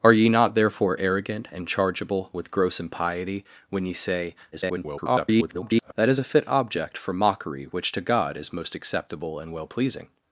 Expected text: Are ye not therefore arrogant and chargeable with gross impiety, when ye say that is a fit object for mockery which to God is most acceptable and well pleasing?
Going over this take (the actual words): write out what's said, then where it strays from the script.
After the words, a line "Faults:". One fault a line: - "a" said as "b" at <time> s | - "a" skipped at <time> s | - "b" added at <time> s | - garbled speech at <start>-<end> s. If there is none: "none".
Are ye not therefore arrogant and chargeable with gross impiety, when ye say [garbled] that is a fit object for mockery which to God is most acceptable and well pleasing?
Faults:
- garbled speech at 4.5-5.9 s